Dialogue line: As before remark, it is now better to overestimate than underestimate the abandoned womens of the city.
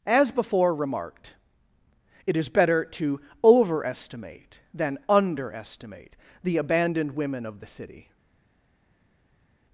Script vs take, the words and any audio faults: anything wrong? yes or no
yes